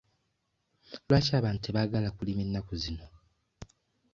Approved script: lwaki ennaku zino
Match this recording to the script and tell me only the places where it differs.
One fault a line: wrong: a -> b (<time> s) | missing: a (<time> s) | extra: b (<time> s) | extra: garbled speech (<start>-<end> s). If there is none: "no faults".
extra: abantu tebaagala kulima (1.4 s)